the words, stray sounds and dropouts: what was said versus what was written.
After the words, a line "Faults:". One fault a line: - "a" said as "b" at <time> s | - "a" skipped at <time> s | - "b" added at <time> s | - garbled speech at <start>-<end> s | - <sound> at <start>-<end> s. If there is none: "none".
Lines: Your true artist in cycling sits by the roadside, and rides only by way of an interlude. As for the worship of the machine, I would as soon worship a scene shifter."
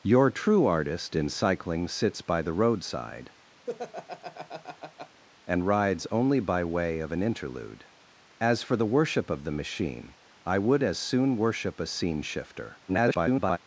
Your true artist in cycling sits by the roadside, and rides only by way of an interlude. As for the worship of the machine, I would as soon worship a scene shifter." [garbled]
Faults:
- laugh at 3.7-5.2 s
- garbled speech at 12.9-13.6 s